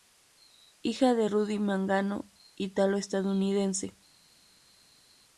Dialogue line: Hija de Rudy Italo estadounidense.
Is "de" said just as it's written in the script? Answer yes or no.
yes